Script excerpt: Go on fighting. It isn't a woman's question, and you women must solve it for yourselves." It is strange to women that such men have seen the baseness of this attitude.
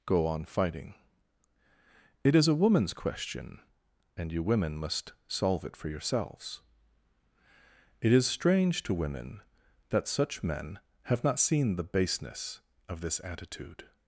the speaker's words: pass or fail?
fail